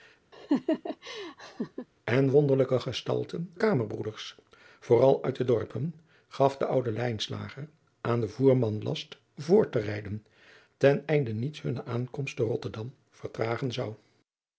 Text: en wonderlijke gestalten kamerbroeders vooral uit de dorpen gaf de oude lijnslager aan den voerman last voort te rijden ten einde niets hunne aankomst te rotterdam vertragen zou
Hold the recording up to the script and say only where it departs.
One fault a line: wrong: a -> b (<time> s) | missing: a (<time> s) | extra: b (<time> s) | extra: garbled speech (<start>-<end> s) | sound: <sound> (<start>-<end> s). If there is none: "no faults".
sound: laugh (0.3-1.9 s)